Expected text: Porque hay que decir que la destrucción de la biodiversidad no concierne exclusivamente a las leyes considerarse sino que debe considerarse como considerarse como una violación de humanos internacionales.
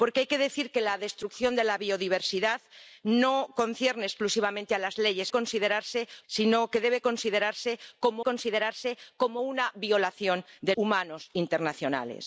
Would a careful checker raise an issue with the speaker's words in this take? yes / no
no